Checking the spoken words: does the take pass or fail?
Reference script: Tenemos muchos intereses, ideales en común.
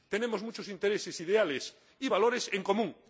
fail